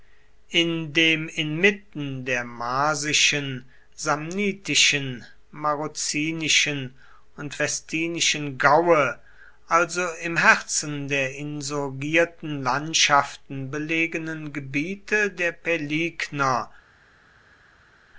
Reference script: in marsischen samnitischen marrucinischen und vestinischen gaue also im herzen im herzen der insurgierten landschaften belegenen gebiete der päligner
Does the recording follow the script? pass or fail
fail